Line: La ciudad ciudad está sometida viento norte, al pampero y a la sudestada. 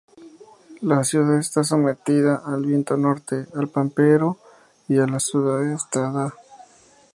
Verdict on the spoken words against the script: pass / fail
fail